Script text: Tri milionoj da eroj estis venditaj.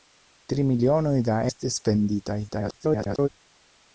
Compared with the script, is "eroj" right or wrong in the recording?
wrong